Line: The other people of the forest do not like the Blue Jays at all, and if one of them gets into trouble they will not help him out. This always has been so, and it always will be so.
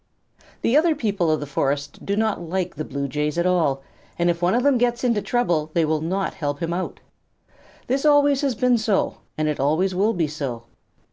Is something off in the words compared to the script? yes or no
no